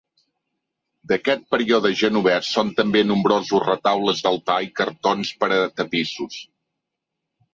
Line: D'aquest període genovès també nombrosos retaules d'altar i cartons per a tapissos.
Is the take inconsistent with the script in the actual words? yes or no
yes